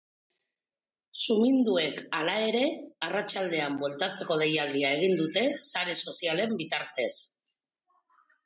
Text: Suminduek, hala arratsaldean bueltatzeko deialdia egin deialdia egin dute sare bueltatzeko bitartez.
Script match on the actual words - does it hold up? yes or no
no